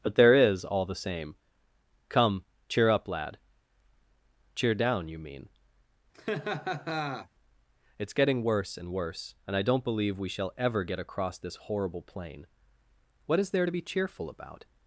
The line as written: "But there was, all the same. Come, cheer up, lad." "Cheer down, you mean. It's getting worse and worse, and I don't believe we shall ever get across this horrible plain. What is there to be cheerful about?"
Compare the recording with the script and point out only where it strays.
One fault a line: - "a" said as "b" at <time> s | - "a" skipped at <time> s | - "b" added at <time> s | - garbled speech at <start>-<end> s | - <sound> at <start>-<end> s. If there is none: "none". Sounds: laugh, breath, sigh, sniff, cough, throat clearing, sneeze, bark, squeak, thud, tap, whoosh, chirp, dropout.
- "was" said as "is" at 0.3 s
- laugh at 6.1-7.3 s